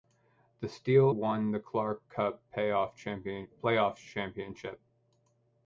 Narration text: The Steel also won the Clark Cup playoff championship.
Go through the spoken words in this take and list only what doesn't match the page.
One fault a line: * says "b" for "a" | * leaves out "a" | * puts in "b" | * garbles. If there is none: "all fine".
* leaves out "also"